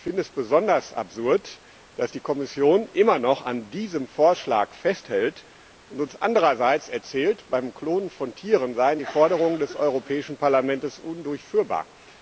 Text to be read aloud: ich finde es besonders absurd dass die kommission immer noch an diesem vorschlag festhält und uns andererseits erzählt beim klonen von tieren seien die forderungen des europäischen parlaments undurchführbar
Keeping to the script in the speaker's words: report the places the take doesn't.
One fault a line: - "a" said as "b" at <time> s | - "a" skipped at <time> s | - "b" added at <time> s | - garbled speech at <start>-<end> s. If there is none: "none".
none